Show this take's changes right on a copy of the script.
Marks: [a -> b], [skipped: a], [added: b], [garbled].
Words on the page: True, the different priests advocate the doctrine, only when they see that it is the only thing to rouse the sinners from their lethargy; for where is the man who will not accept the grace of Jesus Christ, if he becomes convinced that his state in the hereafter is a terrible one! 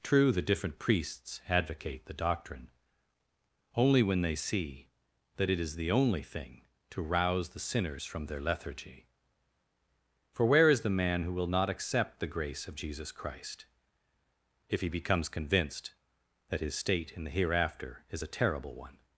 True, the different priests advocate the doctrine, only when they see that it is the only thing to rouse the sinners from their lethargy; for where is the man who will not accept the grace of Jesus Christ, if he becomes convinced that his state in the hereafter is a terrible one!